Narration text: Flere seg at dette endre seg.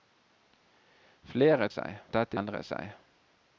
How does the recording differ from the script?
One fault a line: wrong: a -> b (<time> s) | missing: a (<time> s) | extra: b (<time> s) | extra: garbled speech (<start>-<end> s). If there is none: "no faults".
no faults